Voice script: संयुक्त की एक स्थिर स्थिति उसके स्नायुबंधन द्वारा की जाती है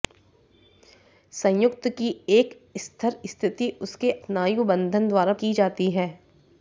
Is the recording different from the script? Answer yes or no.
no